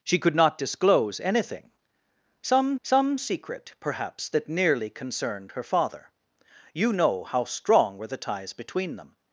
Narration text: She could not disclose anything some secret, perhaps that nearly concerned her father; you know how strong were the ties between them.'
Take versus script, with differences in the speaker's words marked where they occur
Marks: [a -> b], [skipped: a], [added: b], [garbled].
She could not disclose anything some [added: some] secret, perhaps that nearly concerned her father; you know how strong were the ties between them.'